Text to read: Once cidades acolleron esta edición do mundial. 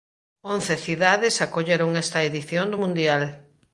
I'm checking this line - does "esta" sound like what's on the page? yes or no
yes